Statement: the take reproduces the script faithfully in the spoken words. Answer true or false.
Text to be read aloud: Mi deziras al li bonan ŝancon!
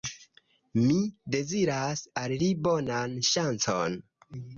true